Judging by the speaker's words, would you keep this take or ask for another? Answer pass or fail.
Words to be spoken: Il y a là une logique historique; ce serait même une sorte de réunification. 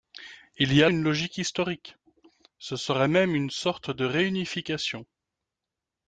fail